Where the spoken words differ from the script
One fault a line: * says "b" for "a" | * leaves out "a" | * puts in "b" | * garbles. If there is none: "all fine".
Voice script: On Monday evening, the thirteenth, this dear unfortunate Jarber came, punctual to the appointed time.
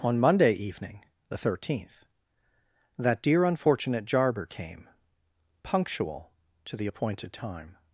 * says "that" for "this"